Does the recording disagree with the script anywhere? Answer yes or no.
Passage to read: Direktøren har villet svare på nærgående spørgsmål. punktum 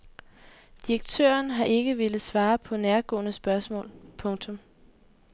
yes